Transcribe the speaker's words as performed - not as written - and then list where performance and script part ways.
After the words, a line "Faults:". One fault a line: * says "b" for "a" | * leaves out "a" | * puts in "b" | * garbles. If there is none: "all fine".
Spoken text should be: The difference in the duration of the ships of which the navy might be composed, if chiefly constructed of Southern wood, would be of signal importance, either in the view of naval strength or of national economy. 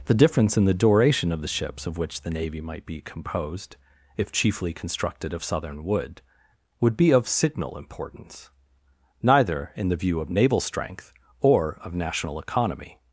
The difference in the duration of the ships of which the navy might be composed, if chiefly constructed of Southern wood, would be of signal importance, neither in the view of naval strength or of national economy.
Faults:
* says "neither" for "either"